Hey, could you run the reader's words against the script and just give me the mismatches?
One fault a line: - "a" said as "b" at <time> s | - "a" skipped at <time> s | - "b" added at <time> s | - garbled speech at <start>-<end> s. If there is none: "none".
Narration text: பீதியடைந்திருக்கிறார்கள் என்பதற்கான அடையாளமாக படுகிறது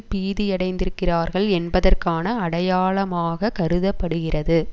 - "கருத" added at 3.5 s